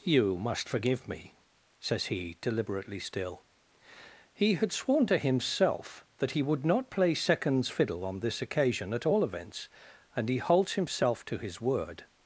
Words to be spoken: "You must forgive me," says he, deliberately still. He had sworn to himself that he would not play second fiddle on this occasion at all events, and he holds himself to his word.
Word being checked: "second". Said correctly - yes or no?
no